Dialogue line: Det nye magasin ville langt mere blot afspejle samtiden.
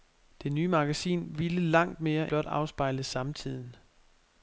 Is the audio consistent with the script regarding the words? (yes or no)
yes